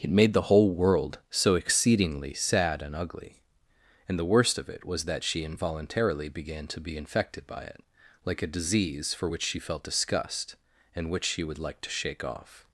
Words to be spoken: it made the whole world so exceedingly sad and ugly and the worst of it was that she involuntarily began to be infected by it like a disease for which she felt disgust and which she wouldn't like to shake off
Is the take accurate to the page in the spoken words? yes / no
no